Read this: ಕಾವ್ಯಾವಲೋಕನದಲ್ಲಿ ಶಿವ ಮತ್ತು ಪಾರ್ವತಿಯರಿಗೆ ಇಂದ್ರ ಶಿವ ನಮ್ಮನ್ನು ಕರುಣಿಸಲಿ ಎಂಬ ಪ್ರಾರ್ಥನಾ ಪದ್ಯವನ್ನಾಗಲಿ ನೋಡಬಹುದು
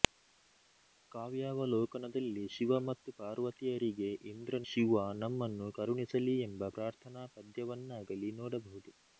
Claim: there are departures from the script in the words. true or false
false